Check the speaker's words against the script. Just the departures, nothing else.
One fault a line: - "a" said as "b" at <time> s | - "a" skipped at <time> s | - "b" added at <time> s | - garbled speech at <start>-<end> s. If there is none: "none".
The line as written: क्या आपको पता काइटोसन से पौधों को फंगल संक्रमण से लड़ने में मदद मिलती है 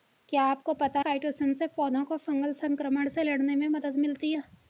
none